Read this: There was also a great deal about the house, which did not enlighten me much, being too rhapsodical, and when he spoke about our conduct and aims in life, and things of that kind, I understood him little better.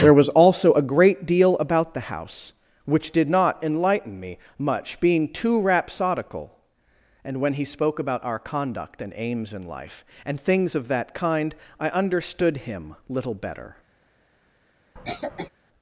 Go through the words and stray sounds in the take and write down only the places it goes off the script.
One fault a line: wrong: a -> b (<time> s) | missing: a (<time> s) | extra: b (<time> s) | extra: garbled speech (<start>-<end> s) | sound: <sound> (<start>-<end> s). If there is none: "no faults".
sound: cough (15.0-15.5 s)